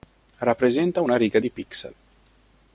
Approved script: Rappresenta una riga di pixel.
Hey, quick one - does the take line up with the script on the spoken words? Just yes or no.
yes